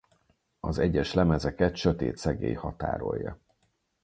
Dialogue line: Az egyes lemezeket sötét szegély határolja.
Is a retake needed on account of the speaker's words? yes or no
no